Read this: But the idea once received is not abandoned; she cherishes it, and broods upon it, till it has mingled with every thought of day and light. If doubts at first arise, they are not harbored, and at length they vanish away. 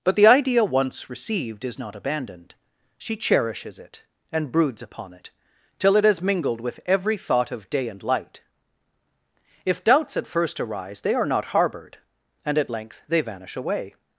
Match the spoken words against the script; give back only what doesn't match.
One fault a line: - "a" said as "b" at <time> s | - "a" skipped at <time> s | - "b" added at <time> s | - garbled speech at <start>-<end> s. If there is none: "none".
none